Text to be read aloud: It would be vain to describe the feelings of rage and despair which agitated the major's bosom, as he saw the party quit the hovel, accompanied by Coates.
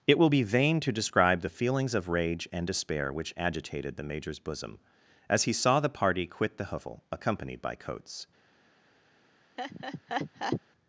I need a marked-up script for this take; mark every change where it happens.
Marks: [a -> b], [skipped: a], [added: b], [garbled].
It [would -> will] be vain to describe the feelings of rage and despair which agitated the major's bosom, as he saw the party quit the hovel, accompanied by Coates.